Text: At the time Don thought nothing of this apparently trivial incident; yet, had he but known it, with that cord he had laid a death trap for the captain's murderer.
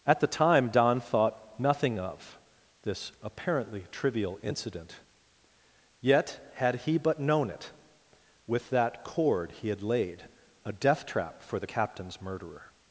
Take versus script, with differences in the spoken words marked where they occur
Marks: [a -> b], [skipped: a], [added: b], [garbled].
At the time Don thought nothing of this apparently trivial incident; yet, had he but known it, with that cord he had laid a death trap for the captain's murderer.